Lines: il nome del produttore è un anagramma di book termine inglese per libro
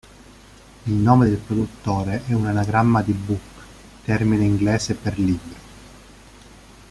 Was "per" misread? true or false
false